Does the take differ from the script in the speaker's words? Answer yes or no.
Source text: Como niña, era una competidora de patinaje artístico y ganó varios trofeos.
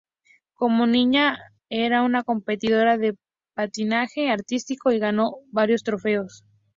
no